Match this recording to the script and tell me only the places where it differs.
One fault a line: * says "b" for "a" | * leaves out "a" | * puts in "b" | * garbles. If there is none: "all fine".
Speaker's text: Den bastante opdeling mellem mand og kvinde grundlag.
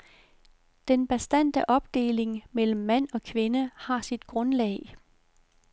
* puts in "har sit"